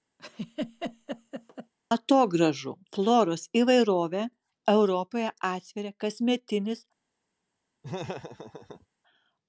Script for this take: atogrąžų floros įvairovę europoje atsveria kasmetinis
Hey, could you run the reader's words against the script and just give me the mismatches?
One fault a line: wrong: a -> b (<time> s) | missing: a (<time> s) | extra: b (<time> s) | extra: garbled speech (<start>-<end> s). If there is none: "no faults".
no faults